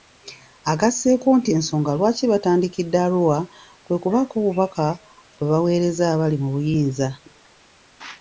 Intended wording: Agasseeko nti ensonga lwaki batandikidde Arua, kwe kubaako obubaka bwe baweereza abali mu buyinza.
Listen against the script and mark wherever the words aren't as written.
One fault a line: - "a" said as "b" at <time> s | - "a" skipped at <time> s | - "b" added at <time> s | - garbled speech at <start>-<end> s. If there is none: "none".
none